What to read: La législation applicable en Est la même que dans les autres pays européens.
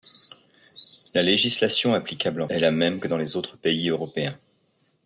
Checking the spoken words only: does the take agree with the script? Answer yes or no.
yes